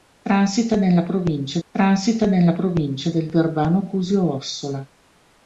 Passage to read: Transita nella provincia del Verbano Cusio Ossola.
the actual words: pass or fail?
fail